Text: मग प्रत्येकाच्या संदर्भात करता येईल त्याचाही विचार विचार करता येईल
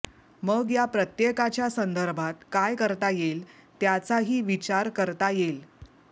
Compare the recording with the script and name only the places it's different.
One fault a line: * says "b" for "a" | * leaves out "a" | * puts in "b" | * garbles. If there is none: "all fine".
* puts in "या"
* puts in "काय"
* leaves out "विचार"